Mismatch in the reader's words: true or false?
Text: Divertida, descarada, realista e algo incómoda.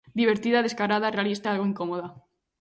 false